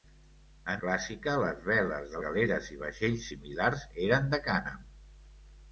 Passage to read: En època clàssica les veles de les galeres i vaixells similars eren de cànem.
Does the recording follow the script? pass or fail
fail